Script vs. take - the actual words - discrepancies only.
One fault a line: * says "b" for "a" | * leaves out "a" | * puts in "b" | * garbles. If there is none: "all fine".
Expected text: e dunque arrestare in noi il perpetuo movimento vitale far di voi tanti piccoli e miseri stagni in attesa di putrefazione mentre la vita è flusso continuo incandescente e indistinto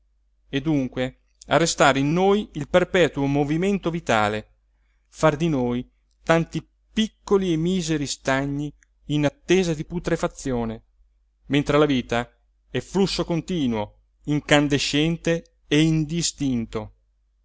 * says "noi" for "voi"